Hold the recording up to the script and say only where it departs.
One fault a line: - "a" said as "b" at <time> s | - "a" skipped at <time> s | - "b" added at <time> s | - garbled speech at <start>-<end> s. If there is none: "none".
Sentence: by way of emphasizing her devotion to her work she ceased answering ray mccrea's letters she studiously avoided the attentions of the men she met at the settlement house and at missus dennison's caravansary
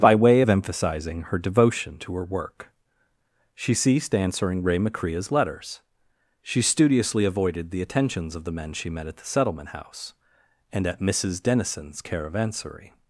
none